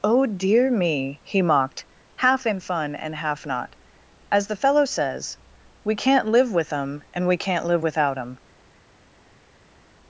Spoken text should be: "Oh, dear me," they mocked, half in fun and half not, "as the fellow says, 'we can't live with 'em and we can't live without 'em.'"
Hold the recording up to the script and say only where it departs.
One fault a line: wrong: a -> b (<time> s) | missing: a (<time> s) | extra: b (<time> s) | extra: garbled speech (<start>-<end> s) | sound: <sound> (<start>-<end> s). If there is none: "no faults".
wrong: they -> he (1.2 s)